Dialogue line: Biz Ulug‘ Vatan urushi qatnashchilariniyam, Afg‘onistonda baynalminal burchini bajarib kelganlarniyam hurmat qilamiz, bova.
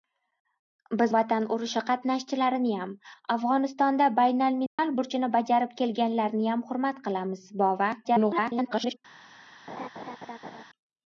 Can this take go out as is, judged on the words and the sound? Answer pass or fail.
fail